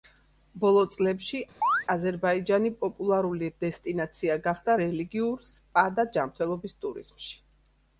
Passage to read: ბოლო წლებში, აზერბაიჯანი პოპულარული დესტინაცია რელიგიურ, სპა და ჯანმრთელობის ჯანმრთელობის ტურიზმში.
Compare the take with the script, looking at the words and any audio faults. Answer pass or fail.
fail